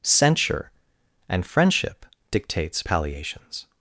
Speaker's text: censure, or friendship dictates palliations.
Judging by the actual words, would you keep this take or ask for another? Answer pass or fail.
fail